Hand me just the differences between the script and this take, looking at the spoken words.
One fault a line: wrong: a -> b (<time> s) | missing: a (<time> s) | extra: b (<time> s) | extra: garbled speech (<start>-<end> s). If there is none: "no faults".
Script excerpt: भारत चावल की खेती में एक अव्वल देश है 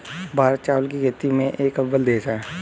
no faults